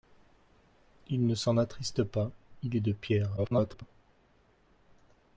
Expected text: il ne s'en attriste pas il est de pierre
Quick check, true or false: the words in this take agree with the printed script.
false